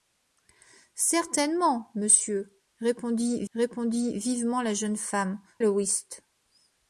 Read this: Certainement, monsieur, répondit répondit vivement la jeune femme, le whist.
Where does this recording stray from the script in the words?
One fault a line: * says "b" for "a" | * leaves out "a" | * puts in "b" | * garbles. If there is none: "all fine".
all fine